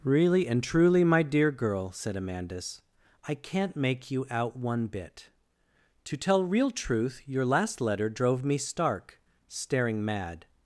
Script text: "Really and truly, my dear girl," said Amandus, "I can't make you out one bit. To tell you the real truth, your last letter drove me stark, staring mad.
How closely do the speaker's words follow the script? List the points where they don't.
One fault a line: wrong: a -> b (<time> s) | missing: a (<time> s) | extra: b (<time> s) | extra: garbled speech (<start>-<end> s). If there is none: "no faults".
missing: you the (6.4 s)